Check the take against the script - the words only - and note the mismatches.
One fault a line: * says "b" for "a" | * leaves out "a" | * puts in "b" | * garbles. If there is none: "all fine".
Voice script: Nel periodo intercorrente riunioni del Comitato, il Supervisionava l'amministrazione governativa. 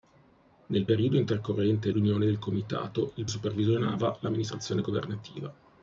all fine